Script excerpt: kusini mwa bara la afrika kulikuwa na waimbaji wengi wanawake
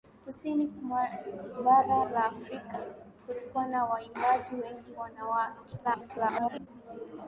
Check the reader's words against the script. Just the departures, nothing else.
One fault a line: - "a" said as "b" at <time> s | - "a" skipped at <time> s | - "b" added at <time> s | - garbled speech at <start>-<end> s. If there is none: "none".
- garbled speech at 5.8-6.7 s